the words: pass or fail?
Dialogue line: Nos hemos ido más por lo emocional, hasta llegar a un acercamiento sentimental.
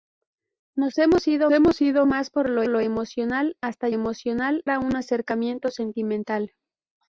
fail